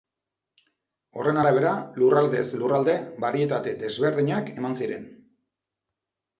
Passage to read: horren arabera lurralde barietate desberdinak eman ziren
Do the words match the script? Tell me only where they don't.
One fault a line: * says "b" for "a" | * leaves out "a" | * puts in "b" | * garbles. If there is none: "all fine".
* puts in "lurraldez"